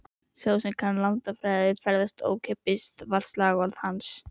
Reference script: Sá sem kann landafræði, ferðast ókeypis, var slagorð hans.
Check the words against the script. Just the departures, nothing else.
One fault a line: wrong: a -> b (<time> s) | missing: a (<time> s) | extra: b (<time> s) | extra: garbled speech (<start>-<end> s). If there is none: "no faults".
no faults